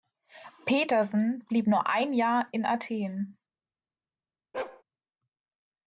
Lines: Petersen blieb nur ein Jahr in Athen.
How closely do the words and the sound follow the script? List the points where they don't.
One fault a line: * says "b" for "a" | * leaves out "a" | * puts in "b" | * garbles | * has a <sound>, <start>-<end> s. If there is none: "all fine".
* has a bark, 4.5-4.8 s